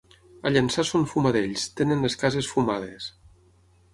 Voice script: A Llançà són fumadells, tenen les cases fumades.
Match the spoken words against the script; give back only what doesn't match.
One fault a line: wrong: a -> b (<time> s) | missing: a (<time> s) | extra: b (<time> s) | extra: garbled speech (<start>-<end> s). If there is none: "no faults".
no faults